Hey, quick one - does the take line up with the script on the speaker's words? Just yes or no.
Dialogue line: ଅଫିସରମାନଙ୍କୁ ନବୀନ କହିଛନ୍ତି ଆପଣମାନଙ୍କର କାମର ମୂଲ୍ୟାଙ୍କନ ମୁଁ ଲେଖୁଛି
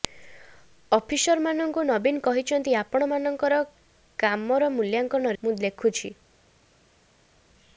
yes